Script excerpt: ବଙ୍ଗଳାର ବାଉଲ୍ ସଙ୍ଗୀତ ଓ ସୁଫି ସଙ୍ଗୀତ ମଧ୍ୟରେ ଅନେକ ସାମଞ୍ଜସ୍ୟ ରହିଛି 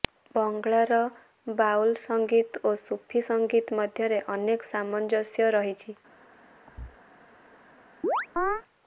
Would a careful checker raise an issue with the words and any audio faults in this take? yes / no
yes